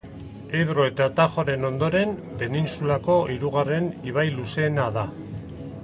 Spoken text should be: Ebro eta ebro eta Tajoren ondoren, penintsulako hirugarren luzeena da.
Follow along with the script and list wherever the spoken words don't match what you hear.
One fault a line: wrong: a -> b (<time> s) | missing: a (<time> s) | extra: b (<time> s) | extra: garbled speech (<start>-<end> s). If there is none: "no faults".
missing: ebro eta (1.1 s)
extra: ibai (4.1 s)